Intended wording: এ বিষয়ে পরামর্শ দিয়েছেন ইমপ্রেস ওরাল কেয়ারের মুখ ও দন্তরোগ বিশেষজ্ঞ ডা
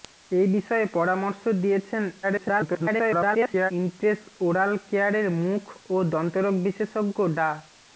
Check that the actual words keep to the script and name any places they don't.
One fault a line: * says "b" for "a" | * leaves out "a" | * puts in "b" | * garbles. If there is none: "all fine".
* garbles